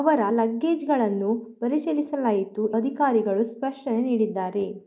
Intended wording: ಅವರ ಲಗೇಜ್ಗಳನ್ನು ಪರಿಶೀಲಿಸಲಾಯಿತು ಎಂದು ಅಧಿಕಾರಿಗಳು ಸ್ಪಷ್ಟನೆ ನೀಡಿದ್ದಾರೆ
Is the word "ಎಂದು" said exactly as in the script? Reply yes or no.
no